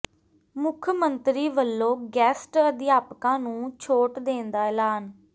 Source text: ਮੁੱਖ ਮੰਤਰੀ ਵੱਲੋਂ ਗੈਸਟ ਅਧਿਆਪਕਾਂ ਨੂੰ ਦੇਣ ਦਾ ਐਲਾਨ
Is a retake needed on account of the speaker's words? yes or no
yes